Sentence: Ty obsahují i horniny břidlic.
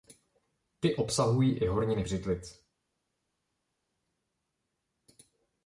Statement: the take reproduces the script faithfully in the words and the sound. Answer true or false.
true